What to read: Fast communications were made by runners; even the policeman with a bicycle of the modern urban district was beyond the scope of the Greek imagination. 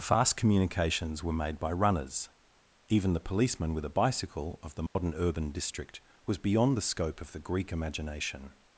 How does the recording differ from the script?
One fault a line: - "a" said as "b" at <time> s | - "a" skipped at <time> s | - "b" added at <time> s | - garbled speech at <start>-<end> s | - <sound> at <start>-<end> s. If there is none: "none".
- dropout at 4.9-5.0 s